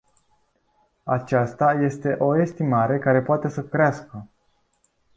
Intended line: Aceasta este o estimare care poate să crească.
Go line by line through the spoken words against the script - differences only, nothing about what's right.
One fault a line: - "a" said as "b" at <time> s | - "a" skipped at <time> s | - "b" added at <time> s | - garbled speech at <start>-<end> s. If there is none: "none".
none